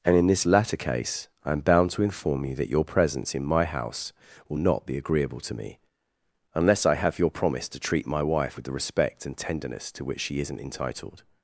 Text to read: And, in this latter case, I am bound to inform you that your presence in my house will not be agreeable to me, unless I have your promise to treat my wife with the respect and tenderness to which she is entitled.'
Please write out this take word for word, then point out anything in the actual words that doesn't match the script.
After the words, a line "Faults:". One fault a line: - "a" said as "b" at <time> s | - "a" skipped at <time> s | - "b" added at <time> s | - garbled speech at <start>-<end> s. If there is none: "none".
And, in this latter case, I am bound to inform you that your presence in my house will not be agreeable to me, unless I have your promise to treat my wife with the respect and tenderness to which she isn't entitled.'
Faults:
- "is" said as "isn't" at 10.4 s